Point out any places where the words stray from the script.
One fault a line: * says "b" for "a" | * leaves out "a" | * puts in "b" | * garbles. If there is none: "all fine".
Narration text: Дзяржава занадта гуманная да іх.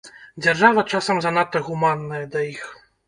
* puts in "часам"